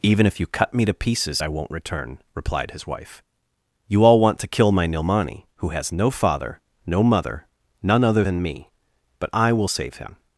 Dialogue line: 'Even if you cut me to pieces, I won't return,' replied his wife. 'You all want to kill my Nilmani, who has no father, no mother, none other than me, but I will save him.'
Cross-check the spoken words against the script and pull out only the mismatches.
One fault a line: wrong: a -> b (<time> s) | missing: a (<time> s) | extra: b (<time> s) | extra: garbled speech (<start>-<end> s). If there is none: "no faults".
no faults